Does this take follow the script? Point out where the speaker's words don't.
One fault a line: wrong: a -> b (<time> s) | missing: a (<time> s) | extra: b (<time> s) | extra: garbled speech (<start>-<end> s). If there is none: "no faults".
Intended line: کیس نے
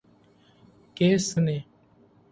no faults